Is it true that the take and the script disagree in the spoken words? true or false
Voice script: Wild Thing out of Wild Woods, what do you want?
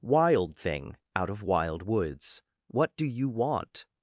false